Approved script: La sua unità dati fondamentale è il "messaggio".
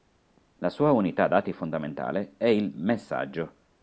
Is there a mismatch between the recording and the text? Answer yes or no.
no